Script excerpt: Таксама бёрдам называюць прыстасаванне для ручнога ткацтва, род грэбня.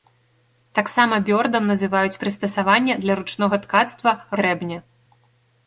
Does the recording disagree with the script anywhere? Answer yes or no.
yes